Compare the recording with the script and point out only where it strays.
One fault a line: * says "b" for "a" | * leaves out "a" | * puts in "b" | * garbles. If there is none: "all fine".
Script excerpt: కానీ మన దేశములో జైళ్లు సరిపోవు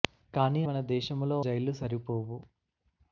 all fine